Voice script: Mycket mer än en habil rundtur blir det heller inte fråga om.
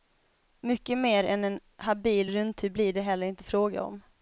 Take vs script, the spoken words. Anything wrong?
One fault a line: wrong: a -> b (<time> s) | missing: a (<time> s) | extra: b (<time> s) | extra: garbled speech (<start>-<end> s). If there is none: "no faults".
no faults